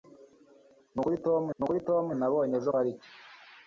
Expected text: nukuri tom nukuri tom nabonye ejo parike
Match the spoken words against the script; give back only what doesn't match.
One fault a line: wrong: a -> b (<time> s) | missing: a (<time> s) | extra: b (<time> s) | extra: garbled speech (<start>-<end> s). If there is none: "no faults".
no faults